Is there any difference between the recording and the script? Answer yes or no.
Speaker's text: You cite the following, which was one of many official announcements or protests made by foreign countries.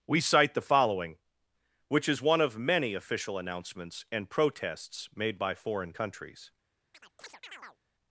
yes